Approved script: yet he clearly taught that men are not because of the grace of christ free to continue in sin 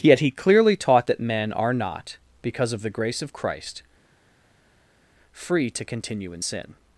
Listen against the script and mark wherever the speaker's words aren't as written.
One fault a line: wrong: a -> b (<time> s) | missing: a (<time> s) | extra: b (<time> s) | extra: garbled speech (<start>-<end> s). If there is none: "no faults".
no faults